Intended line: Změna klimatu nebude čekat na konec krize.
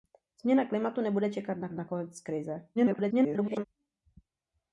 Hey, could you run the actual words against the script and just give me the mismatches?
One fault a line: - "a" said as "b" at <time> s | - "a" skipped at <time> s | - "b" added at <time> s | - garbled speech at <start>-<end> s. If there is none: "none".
- "na" added at 1.7 s
- garbled speech at 2.8-3.6 s